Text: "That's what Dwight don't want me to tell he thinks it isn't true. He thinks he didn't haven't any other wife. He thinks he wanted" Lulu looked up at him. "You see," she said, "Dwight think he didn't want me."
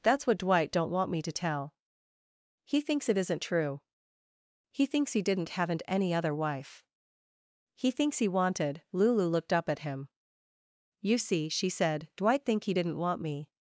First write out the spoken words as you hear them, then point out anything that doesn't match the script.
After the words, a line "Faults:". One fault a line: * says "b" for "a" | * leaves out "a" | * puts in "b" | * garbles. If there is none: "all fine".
"That's what Dwight don't want me to tell he thinks it isn't true. He thinks he didn't haven't any other wife. He thinks he wanted" Lulu looked up at him. "You see," she said, "Dwight think he didn't want me."
Faults:
all fine